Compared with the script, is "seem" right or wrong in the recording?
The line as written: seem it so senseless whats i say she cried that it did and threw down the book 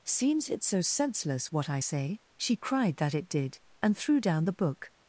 wrong